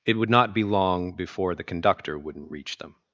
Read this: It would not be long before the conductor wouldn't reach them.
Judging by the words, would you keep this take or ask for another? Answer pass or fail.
pass